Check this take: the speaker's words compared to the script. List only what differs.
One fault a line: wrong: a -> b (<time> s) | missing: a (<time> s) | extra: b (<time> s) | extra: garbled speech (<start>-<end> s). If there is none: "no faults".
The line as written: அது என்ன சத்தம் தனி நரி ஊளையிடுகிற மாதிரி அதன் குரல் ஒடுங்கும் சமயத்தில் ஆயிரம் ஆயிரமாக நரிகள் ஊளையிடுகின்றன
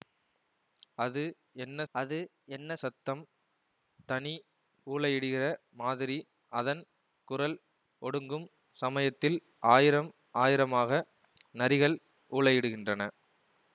extra: அது என்ன (1.9 s)
missing: நரி (4.3 s)